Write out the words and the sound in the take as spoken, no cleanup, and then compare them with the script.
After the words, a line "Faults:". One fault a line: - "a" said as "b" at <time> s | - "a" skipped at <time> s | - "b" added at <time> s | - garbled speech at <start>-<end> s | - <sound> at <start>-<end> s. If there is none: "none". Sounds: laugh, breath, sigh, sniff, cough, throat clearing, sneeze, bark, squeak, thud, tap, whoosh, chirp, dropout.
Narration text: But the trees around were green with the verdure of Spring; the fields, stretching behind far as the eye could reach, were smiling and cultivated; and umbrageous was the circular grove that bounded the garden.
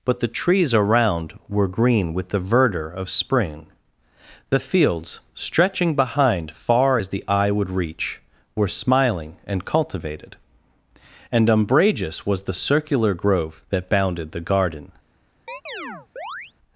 But the trees around were green with the verdure of Spring; the fields, stretching behind far as the eye would reach, were smiling and cultivated; and umbrageous was the circular grove that bounded the garden.
Faults:
- "could" said as "would" at 7.5 s
- chirp at 15.5-16.5 s